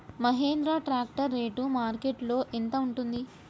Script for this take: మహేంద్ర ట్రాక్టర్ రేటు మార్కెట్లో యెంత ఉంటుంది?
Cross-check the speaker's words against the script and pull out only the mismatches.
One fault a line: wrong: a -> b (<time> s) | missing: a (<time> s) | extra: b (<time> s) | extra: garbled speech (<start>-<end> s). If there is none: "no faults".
no faults